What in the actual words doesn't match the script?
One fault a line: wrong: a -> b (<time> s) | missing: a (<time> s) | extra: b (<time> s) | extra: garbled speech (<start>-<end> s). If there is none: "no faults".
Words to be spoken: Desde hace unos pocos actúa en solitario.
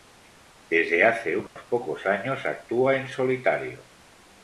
extra: años (2.1 s)